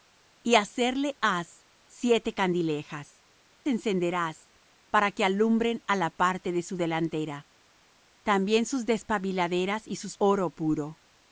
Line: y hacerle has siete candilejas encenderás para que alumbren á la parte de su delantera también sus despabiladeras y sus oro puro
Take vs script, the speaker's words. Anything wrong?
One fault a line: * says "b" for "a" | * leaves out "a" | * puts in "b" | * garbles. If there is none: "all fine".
all fine